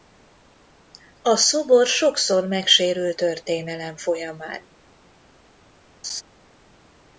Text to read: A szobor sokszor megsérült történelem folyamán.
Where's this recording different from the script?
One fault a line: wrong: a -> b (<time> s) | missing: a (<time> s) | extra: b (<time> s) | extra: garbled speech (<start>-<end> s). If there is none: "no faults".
no faults